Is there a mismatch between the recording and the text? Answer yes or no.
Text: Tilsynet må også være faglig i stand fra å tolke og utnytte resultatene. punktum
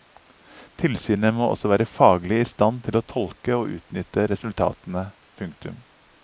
yes